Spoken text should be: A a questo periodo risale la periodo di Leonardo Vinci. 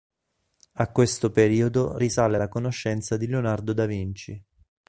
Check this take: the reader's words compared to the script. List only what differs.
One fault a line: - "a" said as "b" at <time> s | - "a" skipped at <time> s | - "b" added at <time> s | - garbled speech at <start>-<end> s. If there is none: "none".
- "a" skipped at 0.9 s
- "periodo" said as "conoscenza" at 2.5 s
- "Da" added at 3.7 s